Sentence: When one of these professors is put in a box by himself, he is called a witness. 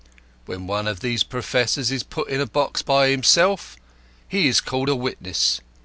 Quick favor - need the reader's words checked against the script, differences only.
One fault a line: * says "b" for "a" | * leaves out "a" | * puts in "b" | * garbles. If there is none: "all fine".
all fine